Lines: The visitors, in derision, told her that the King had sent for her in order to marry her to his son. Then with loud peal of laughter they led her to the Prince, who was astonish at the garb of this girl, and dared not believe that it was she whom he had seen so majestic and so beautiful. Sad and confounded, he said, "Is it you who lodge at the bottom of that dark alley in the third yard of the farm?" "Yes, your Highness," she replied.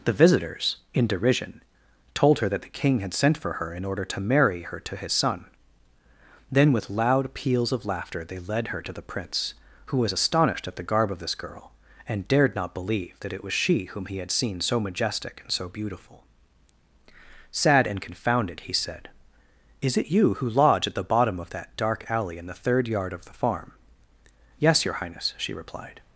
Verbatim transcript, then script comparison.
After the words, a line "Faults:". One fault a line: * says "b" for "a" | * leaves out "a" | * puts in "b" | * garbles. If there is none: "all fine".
The visitors, in derision, told her that the King had sent for her in order to marry her to his son. Then with loud peals of laughter they led her to the Prince, who was astonished at the garb of this girl, and dared not believe that it was she whom he had seen so majestic and so beautiful. Sad and confounded, he said, "Is it you who lodge at the bottom of that dark alley in the third yard of the farm?" "Yes, your Highness," she replied.
Faults:
* says "peals" for "peal"
* says "astonished" for "astonish"